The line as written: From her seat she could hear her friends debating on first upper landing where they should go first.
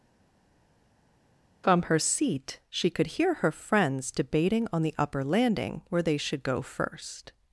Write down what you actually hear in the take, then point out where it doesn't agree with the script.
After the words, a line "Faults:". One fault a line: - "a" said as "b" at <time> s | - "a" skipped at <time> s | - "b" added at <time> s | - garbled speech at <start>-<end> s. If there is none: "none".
From her seat she could hear her friends debating on the upper landing where they should go first.
Faults:
- "first" said as "the" at 4.8 s